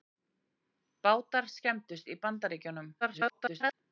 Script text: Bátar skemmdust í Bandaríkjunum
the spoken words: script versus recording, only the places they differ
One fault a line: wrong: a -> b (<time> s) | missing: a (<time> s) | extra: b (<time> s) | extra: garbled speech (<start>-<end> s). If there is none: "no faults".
extra: garbled speech (3.0-3.7 s)